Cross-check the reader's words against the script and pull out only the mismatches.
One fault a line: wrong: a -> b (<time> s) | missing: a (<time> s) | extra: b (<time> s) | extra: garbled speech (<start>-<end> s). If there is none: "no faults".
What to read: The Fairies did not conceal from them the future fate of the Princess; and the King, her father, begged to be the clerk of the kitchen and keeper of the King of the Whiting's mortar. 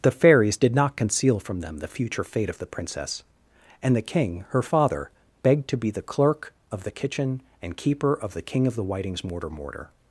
extra: mortar (9.5 s)